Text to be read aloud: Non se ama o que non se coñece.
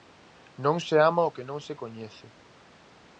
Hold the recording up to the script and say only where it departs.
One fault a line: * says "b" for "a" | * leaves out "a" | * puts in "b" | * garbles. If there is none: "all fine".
all fine